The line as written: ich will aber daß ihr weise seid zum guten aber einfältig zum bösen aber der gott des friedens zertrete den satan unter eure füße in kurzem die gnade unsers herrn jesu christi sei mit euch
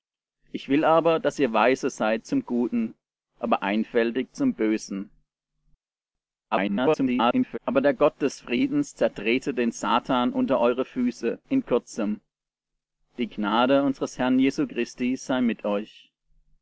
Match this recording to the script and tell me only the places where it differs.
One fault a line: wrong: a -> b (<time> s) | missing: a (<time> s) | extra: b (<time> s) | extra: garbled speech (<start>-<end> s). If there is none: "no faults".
extra: garbled speech (6.5-7.6 s)